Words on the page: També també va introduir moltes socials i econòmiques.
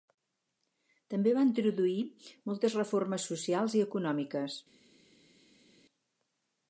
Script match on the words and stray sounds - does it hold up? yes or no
no